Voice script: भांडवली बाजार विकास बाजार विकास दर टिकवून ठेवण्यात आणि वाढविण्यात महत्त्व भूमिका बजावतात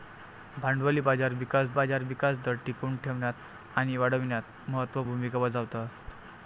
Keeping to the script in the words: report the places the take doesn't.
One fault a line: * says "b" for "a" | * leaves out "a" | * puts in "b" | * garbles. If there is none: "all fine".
all fine